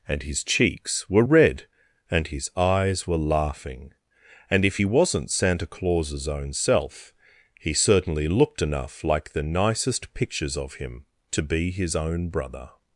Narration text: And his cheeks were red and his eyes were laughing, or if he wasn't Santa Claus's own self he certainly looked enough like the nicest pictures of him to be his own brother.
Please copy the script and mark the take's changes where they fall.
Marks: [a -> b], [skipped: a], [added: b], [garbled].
And his cheeks were red and his eyes were laughing, [or -> and] if he wasn't Santa Claus's own self he certainly looked enough like the nicest pictures of him to be his own brother.